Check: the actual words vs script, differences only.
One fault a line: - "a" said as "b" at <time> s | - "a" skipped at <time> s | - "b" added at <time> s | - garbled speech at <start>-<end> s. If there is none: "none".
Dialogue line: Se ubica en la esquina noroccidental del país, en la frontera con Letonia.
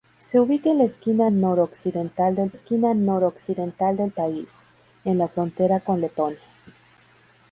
- "esquina noroccidental del" added at 2.5 s